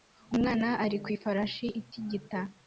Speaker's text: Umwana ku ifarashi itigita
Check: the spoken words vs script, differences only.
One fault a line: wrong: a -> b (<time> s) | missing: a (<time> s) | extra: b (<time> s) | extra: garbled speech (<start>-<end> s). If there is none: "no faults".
extra: ari (0.8 s)